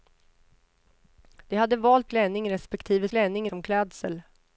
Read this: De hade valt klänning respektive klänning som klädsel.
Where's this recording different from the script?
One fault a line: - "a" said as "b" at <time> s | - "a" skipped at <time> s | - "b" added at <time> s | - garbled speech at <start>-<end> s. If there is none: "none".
none